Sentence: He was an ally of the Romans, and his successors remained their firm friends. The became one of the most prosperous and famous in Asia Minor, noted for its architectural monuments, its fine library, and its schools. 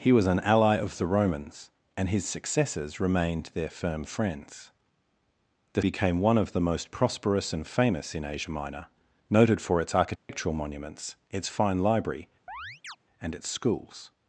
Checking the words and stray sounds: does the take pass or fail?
fail